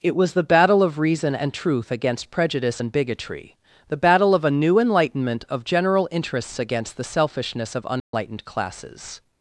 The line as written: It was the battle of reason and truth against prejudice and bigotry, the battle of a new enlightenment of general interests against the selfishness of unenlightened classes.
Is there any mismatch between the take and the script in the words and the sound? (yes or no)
yes